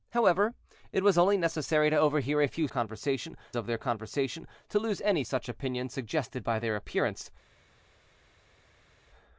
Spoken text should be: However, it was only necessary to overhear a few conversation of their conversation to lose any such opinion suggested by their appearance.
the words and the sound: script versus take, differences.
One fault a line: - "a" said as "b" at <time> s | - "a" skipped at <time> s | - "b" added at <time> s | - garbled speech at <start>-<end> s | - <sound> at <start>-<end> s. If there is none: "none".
none